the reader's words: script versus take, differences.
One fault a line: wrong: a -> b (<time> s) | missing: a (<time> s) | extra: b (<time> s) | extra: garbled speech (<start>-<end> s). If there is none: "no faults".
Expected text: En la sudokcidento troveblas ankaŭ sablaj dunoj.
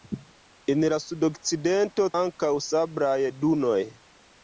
missing: troveblas (2.1 s)